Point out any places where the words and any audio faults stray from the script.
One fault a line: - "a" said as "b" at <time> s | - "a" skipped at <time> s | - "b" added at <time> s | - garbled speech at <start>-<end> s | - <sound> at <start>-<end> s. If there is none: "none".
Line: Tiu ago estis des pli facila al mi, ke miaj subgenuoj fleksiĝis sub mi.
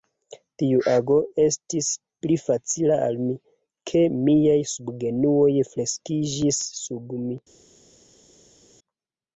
- "des" skipped at 1.9 s